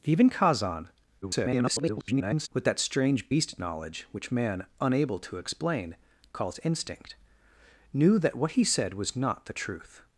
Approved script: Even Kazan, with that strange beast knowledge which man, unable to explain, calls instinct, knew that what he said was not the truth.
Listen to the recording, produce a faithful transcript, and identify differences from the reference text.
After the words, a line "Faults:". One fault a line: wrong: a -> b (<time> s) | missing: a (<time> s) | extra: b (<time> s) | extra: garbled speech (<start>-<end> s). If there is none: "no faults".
Even Kazan, [garbled] with that strange beast knowledge which man, unable to explain, calls instinct, knew that what he said was not the truth.
Faults:
extra: garbled speech (1.2-2.5 s)